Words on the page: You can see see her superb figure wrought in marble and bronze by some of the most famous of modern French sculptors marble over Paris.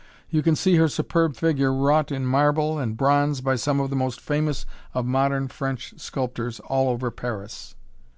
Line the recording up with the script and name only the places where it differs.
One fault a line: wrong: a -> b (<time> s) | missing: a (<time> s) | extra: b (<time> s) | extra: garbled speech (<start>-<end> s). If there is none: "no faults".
missing: see (0.8 s)
wrong: marble -> all (6.6 s)